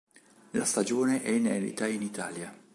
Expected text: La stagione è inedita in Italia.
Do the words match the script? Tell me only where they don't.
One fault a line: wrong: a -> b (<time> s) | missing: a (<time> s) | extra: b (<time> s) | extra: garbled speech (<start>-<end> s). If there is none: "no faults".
no faults